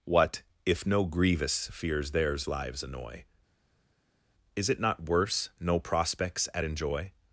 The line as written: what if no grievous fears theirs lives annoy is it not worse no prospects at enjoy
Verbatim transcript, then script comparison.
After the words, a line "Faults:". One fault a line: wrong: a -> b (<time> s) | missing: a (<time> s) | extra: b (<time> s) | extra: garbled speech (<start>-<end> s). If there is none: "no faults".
what if no grievous fears theirs lives annoy is it not worse no prospects at enjoy
Faults:
no faults